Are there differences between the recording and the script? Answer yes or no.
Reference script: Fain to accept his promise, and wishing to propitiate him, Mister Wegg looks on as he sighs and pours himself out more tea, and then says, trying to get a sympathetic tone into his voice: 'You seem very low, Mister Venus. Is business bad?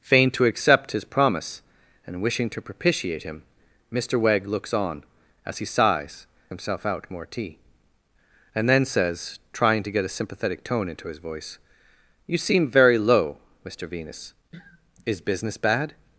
yes